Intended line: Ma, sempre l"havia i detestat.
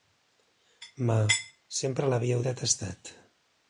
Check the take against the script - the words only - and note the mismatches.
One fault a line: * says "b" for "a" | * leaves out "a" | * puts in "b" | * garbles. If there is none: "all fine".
all fine